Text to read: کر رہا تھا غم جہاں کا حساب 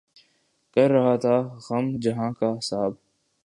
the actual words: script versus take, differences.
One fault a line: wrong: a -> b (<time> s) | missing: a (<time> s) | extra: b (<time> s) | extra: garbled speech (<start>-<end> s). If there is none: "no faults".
no faults